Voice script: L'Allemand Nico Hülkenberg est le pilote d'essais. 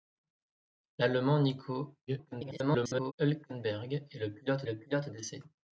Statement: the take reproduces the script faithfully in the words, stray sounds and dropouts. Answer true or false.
false